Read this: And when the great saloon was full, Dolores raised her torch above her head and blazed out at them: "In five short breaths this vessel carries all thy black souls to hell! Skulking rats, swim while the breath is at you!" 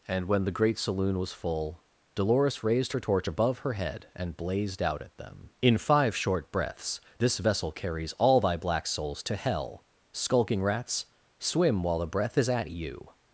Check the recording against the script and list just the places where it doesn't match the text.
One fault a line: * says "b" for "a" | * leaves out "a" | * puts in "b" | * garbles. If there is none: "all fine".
all fine